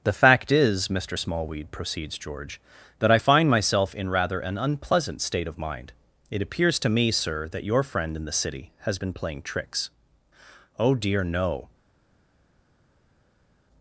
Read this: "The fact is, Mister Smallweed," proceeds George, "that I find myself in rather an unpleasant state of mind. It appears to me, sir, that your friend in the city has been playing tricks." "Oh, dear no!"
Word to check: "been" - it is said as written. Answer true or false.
true